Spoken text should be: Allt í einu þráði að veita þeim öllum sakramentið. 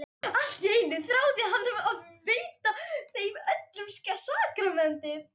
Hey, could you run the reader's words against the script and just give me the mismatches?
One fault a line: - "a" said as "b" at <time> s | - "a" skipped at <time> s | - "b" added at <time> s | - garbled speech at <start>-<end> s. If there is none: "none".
- "hann" added at 1.5 s